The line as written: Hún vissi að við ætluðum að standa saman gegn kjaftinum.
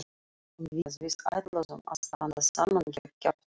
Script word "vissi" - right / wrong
wrong